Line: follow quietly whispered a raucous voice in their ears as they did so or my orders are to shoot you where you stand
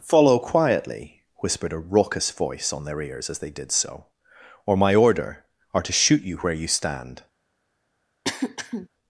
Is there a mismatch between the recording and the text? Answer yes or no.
yes